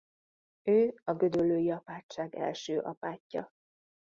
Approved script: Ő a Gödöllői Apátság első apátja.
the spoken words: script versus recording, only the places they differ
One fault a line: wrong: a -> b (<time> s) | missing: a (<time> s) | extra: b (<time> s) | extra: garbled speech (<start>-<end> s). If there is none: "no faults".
no faults